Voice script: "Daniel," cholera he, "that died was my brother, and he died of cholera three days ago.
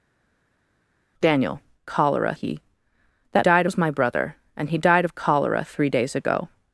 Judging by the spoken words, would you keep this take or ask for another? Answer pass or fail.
pass